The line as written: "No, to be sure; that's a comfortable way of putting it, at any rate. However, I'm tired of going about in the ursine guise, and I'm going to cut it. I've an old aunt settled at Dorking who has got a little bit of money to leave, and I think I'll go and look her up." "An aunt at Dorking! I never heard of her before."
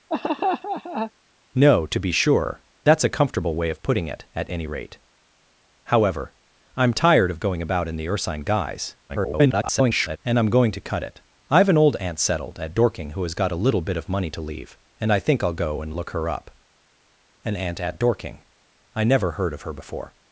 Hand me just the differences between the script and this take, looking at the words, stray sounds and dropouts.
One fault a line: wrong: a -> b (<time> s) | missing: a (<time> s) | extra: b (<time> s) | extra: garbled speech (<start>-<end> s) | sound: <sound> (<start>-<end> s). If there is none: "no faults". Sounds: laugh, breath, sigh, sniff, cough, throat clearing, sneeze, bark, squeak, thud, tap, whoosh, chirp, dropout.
sound: laugh (0.1-1.1 s)
extra: garbled speech (9.1-10.2 s)